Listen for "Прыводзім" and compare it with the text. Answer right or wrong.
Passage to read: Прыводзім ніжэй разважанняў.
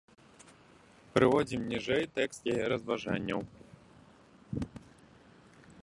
right